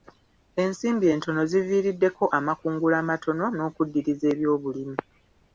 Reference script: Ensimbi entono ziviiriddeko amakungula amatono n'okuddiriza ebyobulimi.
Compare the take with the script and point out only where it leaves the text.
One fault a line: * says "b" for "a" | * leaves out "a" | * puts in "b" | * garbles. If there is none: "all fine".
all fine